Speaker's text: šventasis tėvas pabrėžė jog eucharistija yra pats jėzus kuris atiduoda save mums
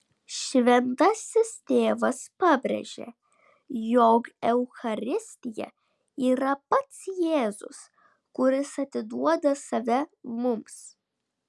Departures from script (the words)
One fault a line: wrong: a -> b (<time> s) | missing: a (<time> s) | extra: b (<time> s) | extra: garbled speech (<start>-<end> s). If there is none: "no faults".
no faults